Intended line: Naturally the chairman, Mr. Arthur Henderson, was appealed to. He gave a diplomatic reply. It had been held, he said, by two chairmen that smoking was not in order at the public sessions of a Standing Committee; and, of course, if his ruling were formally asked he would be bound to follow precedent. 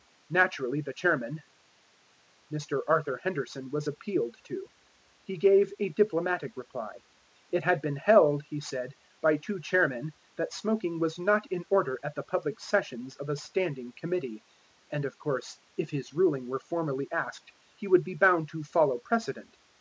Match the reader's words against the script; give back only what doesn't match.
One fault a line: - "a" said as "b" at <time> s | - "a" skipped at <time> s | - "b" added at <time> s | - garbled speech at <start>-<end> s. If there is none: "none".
none